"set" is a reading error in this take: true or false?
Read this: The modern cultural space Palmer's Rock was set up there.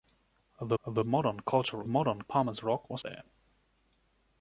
true